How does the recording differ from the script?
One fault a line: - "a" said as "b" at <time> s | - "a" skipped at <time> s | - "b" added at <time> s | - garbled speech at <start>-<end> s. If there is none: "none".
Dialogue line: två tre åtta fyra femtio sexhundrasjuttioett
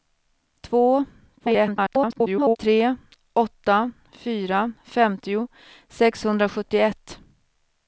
- garbled speech at 1.4-2.6 s